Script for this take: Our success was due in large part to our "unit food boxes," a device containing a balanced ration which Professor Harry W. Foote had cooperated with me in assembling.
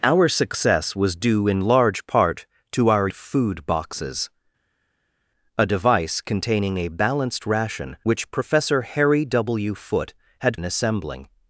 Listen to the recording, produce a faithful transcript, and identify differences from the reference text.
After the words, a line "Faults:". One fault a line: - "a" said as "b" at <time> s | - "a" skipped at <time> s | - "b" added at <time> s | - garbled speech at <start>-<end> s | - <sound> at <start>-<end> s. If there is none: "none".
Our success was due in large part to our "food boxes," a device containing a balanced ration which Professor Harry W. Foote had in assembling.
Faults:
- "unit" skipped at 3.1 s
- "cooperated with me" skipped at 10.6 s